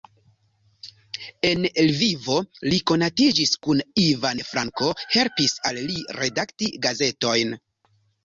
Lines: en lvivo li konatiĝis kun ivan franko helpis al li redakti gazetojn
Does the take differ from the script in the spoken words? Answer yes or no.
no